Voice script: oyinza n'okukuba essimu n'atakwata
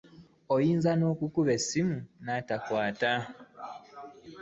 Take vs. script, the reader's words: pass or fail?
pass